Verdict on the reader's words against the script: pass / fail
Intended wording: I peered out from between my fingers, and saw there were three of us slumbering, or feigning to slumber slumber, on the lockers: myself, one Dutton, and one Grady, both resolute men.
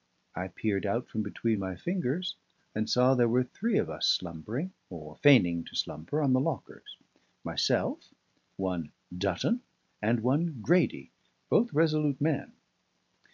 fail